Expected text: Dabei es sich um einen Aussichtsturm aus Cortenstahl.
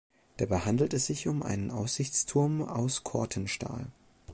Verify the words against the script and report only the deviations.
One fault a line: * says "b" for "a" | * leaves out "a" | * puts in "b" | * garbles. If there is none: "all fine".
* puts in "handelt"